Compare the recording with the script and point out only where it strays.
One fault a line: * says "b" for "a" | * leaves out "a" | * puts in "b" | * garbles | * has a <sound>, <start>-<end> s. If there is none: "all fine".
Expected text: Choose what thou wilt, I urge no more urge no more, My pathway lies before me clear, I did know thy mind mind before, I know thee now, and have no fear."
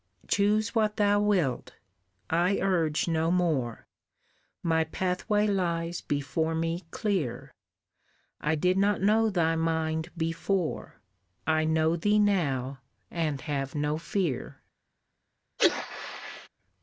* leaves out "urge no more"
* puts in "not"
* leaves out "mind"
* has a sneeze, 15.6-16.5 s